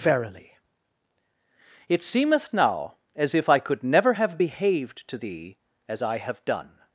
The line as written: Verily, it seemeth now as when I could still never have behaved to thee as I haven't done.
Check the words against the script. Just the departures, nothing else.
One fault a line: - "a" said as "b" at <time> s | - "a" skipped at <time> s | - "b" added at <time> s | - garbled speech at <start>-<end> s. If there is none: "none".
- "when" said as "if" at 3.4 s
- "still" skipped at 3.8 s
- "haven't" said as "have" at 6.2 s